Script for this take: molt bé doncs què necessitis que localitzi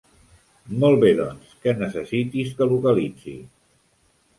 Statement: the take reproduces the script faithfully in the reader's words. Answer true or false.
true